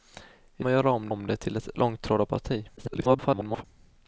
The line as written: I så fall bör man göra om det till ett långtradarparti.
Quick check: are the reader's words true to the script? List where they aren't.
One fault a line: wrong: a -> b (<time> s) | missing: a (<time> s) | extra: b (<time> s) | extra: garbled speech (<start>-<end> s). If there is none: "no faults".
missing: så fall bör (0.7 s)
extra: om (1.1 s)
extra: garbled speech (2.8-3.6 s)